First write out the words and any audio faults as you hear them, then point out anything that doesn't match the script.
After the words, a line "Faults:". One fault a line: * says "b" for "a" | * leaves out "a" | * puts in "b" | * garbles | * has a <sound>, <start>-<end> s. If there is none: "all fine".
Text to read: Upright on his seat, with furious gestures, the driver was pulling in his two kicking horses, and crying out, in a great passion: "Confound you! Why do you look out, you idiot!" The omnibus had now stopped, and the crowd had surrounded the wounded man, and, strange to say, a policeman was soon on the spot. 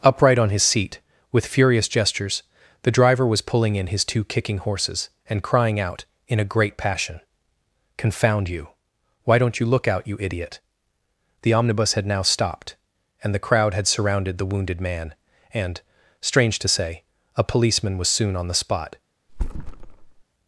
Upright on his seat, with furious gestures, the driver was pulling in his two kicking horses, and crying out, in a great passion: "Confound you! Why don't you look out, you idiot!" The omnibus had now stopped, and the crowd had surrounded the wounded man, and, strange to say, a policeman was soon on the spot.
Faults:
* says "don't" for "do"
* has a thud, 19.3-20.2 s